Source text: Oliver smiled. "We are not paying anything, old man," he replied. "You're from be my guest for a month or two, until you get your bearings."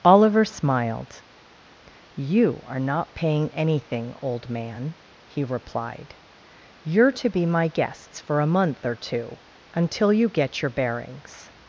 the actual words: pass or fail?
fail